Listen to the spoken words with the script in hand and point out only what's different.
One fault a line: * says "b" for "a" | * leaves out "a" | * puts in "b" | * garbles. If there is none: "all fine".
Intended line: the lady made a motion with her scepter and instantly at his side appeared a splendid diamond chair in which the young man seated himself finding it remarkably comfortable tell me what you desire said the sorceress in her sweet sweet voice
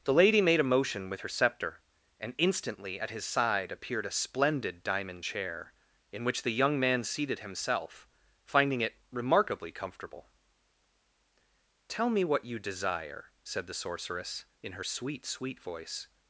all fine